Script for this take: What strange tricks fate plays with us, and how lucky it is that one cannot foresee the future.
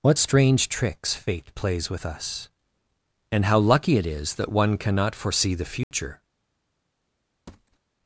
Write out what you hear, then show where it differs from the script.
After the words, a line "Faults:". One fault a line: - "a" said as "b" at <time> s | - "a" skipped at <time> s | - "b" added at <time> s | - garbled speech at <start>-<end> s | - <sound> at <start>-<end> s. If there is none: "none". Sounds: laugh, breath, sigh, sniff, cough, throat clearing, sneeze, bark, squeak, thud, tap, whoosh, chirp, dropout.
What strange tricks fate plays with us, and how lucky it is that one cannot foresee the future.
Faults:
- dropout at 5.8-5.9 s
- thud at 7.5-7.8 s